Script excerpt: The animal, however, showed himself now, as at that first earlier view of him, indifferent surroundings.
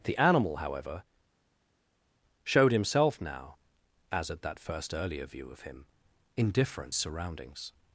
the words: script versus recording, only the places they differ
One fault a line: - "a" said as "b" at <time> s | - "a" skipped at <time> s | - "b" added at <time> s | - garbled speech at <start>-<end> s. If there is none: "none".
none